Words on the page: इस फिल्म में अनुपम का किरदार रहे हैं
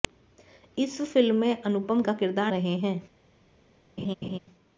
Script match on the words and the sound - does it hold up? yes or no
no